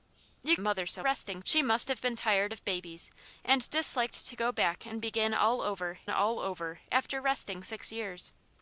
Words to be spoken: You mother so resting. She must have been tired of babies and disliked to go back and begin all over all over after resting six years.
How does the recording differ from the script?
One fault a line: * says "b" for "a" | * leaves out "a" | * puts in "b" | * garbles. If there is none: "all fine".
all fine